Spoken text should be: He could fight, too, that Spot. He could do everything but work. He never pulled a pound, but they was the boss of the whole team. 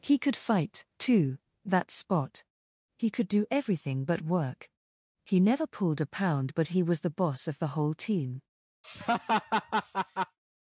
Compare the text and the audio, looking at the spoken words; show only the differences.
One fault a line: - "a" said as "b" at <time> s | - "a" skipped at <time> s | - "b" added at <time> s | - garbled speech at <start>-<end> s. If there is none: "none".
- "they" said as "he" at 6.7 s